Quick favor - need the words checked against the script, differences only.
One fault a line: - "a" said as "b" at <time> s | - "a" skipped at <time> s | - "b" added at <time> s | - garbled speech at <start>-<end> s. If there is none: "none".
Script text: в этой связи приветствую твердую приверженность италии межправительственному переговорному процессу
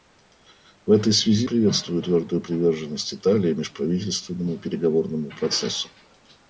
none